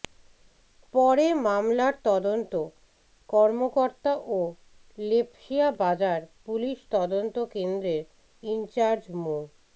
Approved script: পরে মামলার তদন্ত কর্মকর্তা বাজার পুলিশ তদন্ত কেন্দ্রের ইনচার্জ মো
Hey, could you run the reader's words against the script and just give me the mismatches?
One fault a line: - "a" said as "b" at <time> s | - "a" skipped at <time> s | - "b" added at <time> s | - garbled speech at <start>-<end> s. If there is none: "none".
- "ও লেপসিয়া" added at 4.3 s